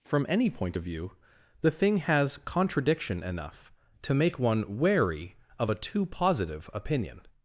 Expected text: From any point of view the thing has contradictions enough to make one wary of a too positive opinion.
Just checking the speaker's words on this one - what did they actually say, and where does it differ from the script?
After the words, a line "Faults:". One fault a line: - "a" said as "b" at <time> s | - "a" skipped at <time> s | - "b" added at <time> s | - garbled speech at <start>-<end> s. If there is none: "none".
From any point of view the thing has contradiction enough to make one wary of a too positive opinion.
Faults:
- "contradictions" said as "contradiction" at 2.4 s